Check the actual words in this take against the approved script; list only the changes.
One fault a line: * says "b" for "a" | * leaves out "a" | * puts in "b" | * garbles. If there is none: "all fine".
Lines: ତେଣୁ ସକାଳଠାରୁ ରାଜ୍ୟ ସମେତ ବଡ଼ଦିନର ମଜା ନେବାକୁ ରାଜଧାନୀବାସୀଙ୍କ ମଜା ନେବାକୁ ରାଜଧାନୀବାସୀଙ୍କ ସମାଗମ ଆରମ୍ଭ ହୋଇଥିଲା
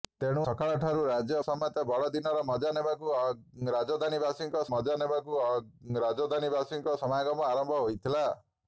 all fine